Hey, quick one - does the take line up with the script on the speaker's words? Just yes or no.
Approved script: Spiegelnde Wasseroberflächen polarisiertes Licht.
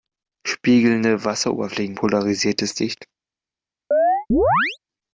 yes